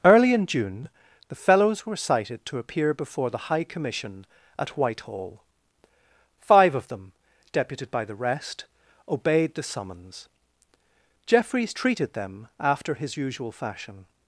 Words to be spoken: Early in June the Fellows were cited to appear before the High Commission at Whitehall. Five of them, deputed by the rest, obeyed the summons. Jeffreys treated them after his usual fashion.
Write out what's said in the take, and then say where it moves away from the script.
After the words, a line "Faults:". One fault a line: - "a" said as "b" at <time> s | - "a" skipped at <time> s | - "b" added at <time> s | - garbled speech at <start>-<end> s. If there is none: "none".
Early in June the Fellows were cited to appear before the High Commission at Whitehall. Five of them, deputed by the rest, obeyed the summons. Jeffreys treated them after his usual fashion.
Faults:
none